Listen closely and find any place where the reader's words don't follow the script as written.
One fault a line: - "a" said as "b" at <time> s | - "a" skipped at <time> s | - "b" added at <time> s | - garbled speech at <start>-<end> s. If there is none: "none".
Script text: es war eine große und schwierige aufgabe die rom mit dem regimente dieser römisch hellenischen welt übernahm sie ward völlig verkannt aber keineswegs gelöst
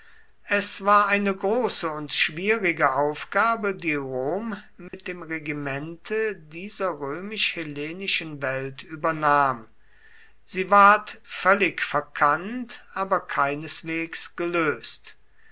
none